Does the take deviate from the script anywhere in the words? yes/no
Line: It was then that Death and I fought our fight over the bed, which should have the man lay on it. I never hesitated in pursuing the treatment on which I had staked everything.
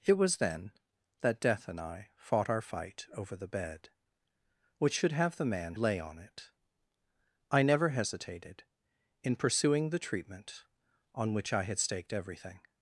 no